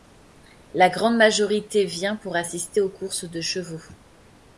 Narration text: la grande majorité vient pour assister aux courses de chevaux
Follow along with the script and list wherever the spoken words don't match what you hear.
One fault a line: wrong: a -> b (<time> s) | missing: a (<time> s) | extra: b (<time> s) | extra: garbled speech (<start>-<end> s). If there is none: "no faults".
no faults